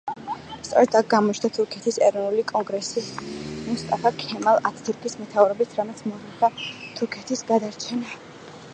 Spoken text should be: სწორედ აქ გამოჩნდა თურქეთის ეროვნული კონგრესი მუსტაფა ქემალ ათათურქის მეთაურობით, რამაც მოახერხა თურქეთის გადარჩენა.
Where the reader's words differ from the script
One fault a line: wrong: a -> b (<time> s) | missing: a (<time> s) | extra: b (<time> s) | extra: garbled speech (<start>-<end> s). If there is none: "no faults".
no faults